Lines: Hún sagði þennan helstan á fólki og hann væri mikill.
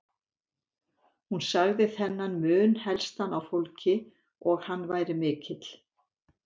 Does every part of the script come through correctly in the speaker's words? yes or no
no